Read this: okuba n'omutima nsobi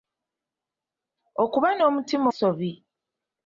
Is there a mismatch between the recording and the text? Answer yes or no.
no